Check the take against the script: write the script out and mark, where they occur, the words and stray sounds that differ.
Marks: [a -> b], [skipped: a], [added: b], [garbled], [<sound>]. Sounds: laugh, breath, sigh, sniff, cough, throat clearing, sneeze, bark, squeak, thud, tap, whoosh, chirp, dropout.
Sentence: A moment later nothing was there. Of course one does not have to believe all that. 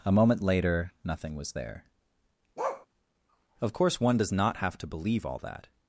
A moment later nothing was there. [bark] Of course one does not have to believe all that.